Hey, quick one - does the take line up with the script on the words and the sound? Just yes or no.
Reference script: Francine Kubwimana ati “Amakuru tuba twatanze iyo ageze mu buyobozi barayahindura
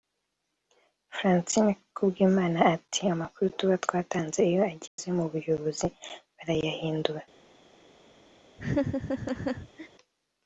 no